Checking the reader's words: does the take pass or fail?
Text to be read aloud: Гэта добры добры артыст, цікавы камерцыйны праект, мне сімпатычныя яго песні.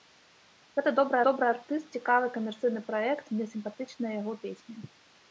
pass